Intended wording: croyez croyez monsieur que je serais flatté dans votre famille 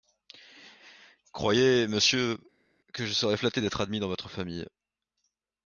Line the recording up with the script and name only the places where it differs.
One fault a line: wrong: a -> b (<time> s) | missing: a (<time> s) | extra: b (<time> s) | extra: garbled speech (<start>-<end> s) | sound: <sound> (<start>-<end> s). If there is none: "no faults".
missing: croyez (1.9 s)
extra: d'être admis (3.6 s)